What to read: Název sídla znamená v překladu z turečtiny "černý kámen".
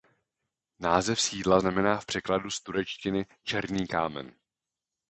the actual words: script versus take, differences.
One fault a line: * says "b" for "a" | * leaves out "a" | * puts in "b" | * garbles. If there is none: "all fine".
all fine